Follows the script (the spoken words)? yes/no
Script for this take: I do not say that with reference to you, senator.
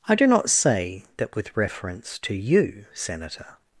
yes